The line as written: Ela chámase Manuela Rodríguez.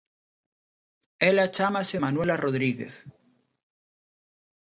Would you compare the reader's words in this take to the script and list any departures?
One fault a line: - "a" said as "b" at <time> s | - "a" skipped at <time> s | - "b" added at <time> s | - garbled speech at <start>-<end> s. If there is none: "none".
none